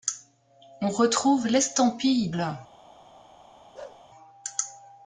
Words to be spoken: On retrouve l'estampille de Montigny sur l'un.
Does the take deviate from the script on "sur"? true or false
true